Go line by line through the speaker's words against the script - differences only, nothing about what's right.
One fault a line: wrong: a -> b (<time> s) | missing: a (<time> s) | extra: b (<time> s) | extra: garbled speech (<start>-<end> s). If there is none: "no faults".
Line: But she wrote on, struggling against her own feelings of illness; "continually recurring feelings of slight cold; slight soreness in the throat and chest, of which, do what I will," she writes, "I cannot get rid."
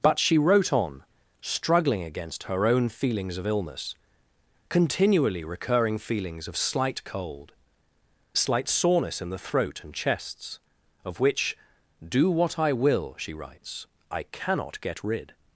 wrong: chest -> chests (9.9 s)